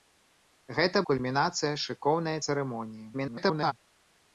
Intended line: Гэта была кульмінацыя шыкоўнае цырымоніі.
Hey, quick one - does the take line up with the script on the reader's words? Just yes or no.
no